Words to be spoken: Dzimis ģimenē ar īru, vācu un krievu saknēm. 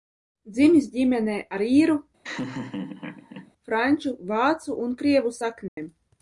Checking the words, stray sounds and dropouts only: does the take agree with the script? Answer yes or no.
no